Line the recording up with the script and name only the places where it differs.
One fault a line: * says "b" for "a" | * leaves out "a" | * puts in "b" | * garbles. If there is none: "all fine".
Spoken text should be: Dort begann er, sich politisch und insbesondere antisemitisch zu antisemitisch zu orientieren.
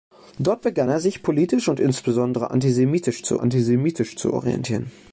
all fine